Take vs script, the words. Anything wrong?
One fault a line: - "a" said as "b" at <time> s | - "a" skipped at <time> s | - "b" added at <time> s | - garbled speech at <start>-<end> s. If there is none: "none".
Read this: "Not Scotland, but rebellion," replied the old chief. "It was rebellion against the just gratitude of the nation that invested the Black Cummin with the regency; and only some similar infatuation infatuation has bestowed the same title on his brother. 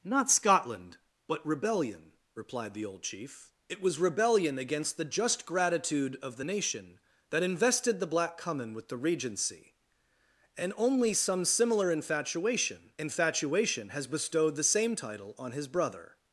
none